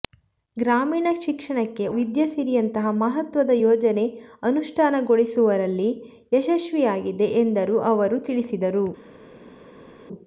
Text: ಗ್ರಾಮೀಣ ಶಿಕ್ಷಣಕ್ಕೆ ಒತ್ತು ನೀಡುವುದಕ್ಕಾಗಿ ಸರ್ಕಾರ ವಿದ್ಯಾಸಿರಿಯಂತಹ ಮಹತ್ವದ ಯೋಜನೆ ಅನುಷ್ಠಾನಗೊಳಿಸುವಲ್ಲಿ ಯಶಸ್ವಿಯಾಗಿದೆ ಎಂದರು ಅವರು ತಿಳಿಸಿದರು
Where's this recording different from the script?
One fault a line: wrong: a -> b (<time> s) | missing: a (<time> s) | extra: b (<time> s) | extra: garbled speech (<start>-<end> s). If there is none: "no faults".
missing: ಒತ್ತು ನೀಡುವುದಕ್ಕಾಗಿ ಸರ್ಕಾರ (1.9 s)